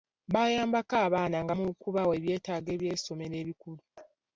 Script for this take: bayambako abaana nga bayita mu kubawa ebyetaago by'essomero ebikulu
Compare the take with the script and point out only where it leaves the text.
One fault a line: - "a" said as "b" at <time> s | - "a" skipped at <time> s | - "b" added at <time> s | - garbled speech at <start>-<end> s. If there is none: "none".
- "bayita" skipped at 1.5 s